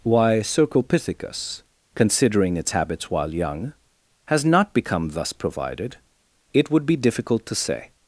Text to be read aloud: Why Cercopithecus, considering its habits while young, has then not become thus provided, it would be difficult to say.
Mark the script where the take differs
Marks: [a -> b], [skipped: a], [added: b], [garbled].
Why Cercopithecus, considering its habits while young, has [skipped: then] not become thus provided, it would be difficult to say.